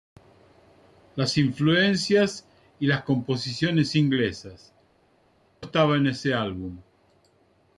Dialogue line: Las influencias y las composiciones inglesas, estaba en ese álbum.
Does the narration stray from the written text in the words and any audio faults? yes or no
no